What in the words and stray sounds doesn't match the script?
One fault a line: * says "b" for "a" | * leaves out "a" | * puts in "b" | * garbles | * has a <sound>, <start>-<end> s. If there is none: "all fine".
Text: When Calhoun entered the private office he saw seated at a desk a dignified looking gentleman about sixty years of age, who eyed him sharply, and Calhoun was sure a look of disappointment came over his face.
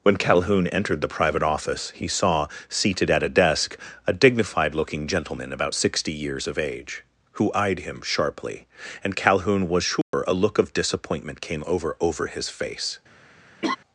* has a dropout, 10.0-10.1 s
* puts in "over"
* has a laugh, 13.6-13.8 s